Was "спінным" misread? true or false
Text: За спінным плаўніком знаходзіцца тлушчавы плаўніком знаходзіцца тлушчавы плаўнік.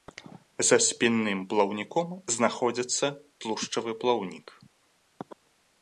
false